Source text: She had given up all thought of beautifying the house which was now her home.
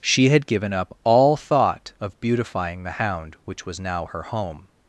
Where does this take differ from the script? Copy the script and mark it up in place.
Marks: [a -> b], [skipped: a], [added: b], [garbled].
She had given up all thought of beautifying the [house -> hound] which was now her home.